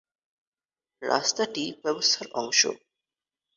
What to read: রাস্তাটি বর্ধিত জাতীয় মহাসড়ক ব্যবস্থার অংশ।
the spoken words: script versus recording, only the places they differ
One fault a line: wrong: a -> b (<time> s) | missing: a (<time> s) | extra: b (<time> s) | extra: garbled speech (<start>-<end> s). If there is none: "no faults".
missing: বর্ধিত জাতীয় মহাসড়ক (1.6 s)